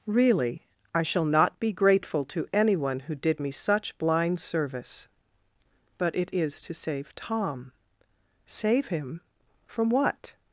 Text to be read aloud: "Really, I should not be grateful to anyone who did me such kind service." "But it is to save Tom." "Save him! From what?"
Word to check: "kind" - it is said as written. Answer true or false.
false